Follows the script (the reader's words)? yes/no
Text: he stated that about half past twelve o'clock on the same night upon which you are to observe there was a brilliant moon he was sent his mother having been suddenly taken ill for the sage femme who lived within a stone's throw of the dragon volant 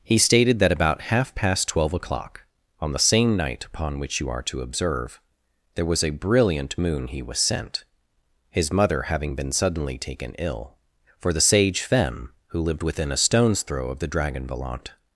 yes